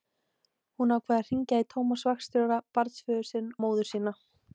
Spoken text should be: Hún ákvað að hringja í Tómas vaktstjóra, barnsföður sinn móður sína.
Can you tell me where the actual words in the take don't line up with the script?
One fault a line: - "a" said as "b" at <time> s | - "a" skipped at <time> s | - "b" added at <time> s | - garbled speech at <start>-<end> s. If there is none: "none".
none